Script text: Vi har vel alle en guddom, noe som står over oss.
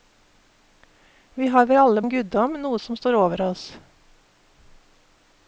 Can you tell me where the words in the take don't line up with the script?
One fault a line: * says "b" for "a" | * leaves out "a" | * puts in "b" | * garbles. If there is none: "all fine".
all fine